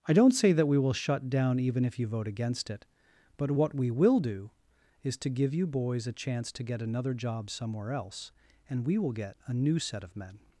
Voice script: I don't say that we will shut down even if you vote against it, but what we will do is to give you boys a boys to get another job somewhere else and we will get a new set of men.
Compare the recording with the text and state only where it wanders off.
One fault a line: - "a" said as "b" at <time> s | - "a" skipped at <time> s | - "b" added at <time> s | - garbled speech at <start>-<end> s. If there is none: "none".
- "boys" said as "chance" at 6.1 s